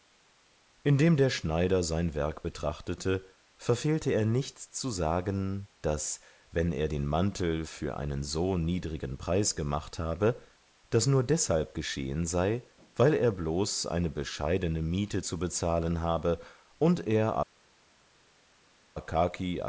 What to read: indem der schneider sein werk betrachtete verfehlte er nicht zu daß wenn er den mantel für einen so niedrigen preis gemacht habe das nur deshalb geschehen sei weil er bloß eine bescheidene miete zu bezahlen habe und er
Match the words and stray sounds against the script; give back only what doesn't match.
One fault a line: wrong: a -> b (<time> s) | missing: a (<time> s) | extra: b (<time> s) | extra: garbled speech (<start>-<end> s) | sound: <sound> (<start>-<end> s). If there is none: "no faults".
extra: sagen (4.9 s)